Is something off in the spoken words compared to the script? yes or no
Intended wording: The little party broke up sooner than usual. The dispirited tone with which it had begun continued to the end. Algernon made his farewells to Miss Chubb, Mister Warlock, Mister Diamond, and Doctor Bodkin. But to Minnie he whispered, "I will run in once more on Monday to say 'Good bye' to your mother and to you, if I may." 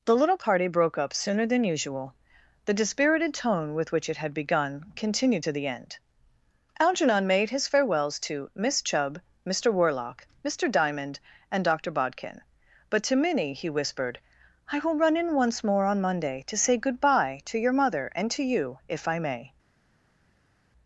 no